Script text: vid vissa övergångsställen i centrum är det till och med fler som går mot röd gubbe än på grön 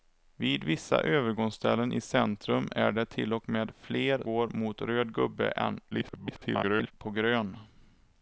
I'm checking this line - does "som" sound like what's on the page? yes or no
no